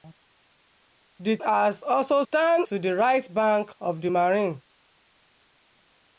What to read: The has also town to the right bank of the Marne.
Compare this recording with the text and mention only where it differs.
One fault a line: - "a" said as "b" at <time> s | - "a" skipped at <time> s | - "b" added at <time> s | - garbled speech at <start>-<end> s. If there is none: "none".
none